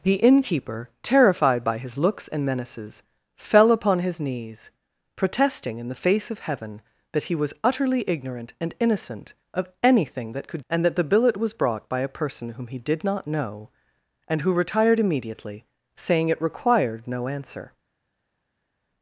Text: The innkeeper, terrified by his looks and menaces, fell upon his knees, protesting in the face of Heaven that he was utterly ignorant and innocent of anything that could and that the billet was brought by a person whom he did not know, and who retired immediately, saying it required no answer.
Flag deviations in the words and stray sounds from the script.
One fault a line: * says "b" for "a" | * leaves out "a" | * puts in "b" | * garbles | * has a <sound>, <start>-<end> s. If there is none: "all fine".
all fine